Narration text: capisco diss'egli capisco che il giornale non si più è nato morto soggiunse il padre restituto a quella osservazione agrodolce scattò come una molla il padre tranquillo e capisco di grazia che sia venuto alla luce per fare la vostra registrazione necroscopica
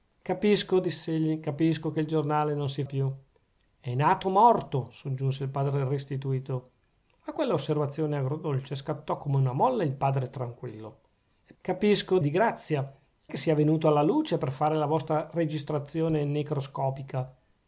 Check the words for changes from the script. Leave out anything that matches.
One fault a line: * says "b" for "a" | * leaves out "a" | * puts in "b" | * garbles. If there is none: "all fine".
all fine